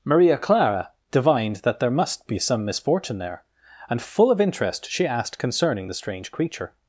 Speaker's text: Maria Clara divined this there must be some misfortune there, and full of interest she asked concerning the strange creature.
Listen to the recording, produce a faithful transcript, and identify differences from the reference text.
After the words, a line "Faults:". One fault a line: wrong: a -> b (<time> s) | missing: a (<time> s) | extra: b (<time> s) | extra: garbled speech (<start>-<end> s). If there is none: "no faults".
Maria Clara divined that there must be some misfortune there, and full of interest she asked concerning the strange creature.
Faults:
wrong: this -> that (1.6 s)